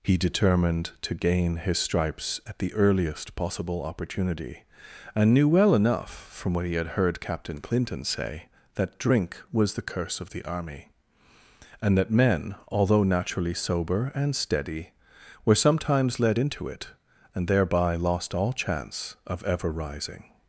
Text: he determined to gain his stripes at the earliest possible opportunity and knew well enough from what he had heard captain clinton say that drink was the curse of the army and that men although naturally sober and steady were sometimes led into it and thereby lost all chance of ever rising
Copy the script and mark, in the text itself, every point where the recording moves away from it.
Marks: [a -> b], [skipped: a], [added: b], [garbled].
he determined to gain his stripes at the earliest possible opportunity and knew well enough from what he had heard captain clinton say that drink was the curse of the army and that men although naturally sober and steady were sometimes led into it and thereby lost all chance of ever rising